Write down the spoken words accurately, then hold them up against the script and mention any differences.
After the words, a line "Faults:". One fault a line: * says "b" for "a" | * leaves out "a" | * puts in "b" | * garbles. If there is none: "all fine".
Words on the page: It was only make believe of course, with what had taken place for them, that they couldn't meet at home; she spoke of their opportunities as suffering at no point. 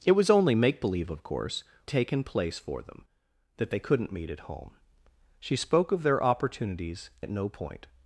It was only make believe of course, taken place for them, that they couldn't meet at home; she spoke of their opportunities at no point.
Faults:
* leaves out "with what had"
* leaves out "as suffering"